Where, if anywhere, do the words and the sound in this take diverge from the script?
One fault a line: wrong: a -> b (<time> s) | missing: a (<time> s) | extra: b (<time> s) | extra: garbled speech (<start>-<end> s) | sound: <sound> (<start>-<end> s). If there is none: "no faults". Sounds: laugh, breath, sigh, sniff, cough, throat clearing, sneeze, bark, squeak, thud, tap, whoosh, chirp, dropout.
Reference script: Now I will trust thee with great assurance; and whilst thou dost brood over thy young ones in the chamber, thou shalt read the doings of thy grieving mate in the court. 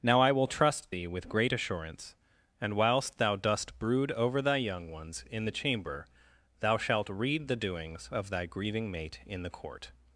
no faults